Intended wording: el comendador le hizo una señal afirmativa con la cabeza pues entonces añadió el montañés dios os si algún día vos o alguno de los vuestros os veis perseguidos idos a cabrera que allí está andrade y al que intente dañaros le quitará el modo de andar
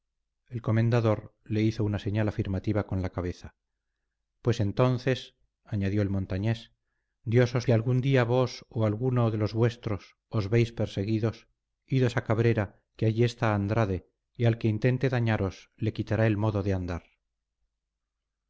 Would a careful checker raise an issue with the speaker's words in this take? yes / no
no